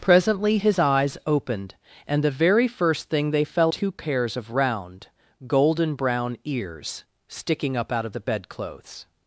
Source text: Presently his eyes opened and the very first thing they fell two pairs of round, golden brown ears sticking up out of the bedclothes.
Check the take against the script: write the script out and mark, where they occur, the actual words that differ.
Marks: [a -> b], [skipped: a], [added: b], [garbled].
Presently his eyes opened and the very first thing they fell two pairs of round, golden brown ears sticking up out of the bedclothes.